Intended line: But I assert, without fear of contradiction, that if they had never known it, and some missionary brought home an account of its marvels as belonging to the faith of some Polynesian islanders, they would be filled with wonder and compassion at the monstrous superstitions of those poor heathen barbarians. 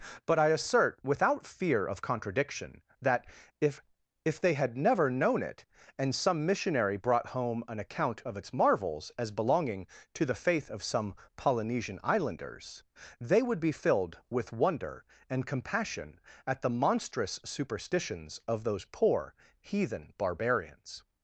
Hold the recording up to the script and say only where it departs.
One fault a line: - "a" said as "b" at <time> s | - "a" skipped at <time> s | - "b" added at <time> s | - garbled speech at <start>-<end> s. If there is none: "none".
- "if" added at 4.2 s